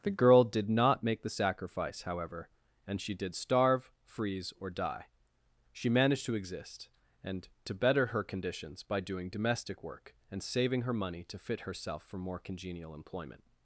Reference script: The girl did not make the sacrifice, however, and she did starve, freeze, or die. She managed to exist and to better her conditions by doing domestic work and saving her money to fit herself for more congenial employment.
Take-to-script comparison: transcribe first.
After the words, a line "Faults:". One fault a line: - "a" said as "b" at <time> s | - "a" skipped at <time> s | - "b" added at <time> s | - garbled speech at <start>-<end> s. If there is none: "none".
The girl did not make the sacrifice, however, and she did starve, freeze, or die. She managed to exist and to better her conditions by doing domestic work and saving her money to fit herself for more congenial employment.
Faults:
none